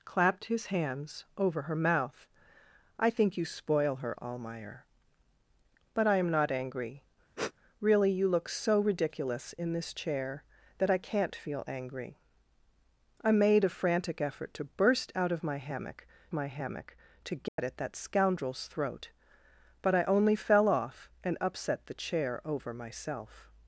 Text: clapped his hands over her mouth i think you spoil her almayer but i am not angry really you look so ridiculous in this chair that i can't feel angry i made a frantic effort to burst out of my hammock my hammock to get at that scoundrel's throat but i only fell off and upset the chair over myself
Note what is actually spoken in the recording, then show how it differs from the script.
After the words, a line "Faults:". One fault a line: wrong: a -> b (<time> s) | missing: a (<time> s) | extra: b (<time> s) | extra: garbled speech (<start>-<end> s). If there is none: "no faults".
clapped his hands over her mouth i think you spoil her almayer but i am not angry really you look so ridiculous in this chair that i can't feel angry i made a frantic effort to burst out of my hammock my hammock to get at that scoundrel's throat but i only fell off and upset the chair over myself
Faults:
no faults